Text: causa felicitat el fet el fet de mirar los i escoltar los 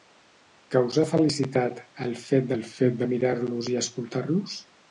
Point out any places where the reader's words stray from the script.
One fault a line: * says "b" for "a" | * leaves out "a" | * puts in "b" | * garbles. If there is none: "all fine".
all fine